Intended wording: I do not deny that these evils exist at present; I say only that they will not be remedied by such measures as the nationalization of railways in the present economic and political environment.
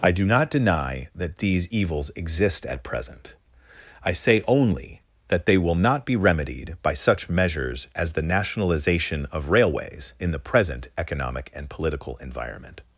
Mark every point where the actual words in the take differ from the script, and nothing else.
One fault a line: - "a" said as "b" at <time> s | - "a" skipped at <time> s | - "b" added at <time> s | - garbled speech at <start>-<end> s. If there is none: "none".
none